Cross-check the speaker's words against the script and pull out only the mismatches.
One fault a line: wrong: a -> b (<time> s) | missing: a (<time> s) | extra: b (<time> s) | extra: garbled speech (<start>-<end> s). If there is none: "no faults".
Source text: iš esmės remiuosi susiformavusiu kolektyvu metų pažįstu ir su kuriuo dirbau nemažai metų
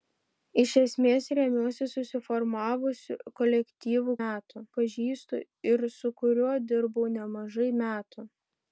no faults